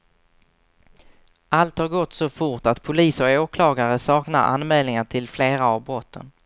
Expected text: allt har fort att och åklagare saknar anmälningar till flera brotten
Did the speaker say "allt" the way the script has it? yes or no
yes